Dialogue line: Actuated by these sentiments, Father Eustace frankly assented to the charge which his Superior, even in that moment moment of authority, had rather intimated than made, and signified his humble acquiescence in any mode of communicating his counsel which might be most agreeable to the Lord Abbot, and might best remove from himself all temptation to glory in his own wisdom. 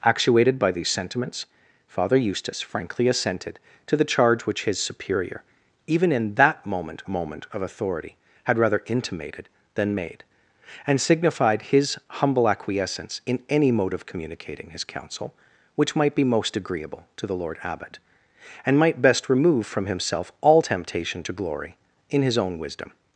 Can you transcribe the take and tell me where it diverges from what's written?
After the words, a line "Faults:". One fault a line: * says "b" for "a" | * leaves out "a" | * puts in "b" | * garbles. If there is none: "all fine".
Actuated by these sentiments, Father Eustace frankly assented to the charge which his Superior, even in that moment moment of authority, had rather intimated than made, and signified his humble acquiescence in any mode of communicating his counsel which might be most agreeable to the Lord Abbot, and might best remove from himself all temptation to glory in his own wisdom.
Faults:
all fine